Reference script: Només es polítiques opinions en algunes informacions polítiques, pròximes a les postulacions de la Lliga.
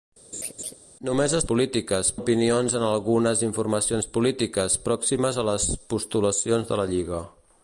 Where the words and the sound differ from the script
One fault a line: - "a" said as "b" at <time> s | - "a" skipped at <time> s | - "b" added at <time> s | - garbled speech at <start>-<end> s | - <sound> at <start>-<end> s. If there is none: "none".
- laugh at 0.3-0.7 s